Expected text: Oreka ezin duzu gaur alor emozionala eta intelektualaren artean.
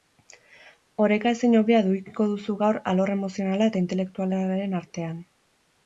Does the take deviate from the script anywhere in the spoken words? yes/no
yes